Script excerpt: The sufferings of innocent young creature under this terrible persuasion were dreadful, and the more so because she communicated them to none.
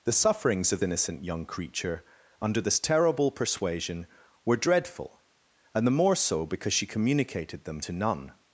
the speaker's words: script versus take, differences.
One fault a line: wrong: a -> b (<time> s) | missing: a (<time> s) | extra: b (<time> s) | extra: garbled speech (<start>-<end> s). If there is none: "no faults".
no faults